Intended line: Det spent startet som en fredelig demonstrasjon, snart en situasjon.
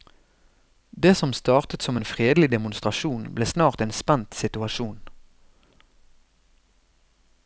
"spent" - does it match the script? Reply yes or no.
no